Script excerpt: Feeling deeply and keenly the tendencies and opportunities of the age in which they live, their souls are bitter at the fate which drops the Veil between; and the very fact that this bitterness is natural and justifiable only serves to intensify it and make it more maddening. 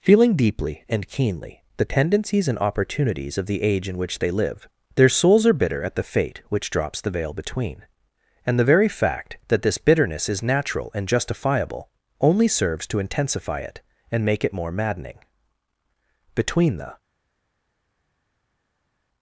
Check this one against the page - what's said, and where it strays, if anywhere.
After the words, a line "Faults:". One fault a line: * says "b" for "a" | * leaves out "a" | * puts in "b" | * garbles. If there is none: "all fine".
Feeling deeply and keenly the tendencies and opportunities of the age in which they live, their souls are bitter at the fate which drops the Veil between; and the very fact that this bitterness is natural and justifiable only serves to intensify it and make it more maddening. Between the
Faults:
* puts in "Between the"